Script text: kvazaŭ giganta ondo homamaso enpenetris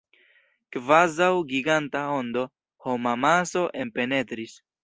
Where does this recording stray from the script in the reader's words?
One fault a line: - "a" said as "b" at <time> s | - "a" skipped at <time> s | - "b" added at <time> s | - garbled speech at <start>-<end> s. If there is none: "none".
none